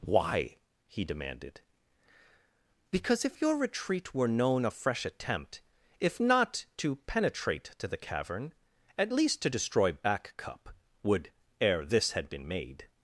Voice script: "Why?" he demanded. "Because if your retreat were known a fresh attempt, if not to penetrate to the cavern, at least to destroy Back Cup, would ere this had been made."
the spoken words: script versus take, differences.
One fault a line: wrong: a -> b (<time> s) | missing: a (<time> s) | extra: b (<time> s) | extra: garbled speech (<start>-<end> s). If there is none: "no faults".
no faults